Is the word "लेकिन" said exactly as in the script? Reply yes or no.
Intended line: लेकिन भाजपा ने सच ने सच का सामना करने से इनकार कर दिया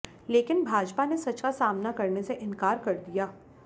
yes